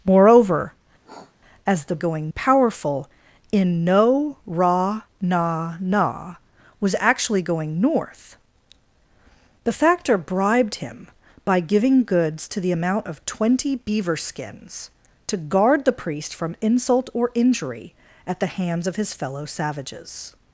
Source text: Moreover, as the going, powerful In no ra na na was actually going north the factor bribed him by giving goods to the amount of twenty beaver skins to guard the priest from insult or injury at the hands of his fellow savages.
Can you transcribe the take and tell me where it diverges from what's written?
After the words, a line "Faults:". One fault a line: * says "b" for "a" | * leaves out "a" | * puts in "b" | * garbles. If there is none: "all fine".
Moreover, as the going, powerful In no ra na na was actually going north the factor bribed him by giving goods to the amount of twenty beaver skins to guard the priest from insult or injury at the hands of his fellow savages.
Faults:
all fine